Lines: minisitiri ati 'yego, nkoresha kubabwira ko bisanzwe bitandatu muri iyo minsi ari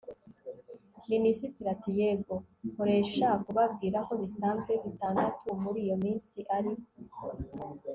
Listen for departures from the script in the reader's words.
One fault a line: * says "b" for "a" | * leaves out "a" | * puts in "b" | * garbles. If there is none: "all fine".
all fine